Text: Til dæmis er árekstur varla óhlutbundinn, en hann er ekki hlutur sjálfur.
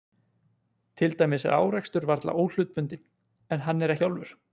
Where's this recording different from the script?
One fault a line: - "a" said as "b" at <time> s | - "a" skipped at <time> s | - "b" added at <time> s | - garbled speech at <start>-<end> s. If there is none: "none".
- "ekki hlutur" skipped at 4.0 s